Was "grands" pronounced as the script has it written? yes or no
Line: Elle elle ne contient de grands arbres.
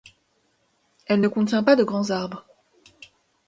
yes